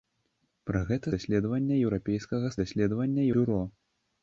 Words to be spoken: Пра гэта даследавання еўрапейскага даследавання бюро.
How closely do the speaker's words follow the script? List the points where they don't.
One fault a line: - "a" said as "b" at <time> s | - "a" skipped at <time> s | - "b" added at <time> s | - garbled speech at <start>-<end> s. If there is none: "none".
none